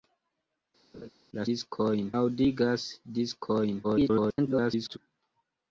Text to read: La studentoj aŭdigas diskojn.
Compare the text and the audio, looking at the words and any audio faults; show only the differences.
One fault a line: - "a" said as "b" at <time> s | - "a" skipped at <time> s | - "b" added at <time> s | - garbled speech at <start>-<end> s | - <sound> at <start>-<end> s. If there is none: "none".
- laugh at 0.9-1.1 s
- "studentoj" said as "diskojn" at 1.5 s
- garbled speech at 3.8-5.0 s